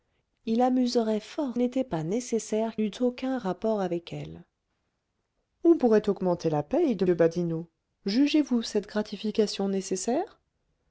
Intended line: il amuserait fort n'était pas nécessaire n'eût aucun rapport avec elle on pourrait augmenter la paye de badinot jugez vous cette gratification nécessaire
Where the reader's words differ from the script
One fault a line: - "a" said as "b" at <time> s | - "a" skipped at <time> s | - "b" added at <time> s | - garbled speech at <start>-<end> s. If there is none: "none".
none